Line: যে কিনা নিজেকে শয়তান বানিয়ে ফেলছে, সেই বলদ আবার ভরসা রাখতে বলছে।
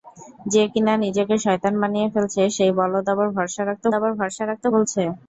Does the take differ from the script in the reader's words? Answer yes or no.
yes